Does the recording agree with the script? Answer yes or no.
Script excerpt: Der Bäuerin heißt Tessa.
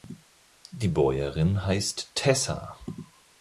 no